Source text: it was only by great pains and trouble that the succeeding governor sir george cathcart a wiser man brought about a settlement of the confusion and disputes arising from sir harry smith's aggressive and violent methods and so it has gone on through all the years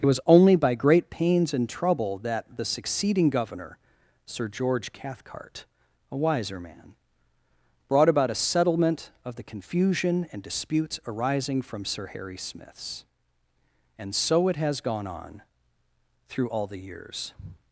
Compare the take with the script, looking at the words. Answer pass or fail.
fail